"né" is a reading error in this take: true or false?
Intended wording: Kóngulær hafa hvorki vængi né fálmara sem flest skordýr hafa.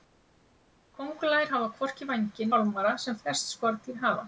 true